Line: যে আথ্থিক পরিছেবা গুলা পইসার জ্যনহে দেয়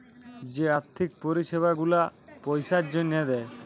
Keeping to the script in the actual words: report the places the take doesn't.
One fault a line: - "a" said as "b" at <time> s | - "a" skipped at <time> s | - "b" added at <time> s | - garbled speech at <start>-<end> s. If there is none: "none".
none